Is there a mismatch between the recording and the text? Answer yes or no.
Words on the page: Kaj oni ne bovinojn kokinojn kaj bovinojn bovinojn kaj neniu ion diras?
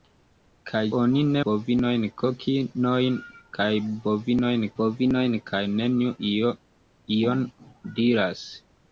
no